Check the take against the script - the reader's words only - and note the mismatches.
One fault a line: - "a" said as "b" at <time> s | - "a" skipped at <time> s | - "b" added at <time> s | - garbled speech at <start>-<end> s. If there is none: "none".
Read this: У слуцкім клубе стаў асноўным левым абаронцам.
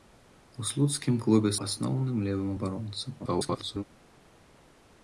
- "стаў" skipped at 1.5 s
- garbled speech at 3.2-3.8 s